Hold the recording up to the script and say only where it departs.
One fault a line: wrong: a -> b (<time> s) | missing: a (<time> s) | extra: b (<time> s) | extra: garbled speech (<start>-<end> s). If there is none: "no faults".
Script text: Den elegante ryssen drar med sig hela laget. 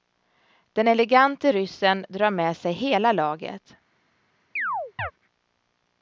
no faults